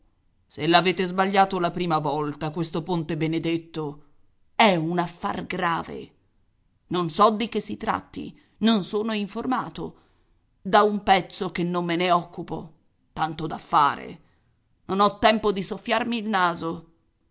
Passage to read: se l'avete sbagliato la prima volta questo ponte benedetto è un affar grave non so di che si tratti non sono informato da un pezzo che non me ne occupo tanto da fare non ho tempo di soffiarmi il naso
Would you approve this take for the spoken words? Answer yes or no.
yes